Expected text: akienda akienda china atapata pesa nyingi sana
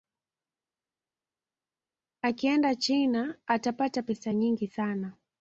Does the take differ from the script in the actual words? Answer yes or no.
yes